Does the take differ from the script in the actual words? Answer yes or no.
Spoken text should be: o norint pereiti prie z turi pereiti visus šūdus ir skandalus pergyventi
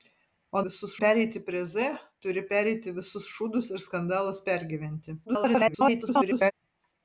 yes